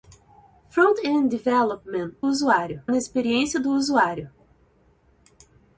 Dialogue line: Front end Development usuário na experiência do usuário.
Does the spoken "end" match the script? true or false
true